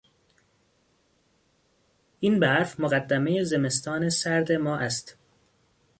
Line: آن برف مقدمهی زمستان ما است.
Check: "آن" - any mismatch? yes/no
yes